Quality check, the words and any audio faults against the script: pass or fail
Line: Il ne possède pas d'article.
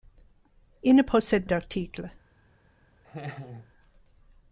fail